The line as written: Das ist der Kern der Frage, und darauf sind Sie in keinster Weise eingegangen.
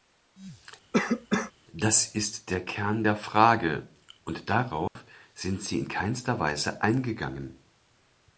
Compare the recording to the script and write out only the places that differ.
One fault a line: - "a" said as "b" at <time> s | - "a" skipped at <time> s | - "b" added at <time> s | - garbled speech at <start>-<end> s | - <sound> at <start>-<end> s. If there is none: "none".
- cough at 0.9-1.5 s
- dropout at 4.9-5.0 s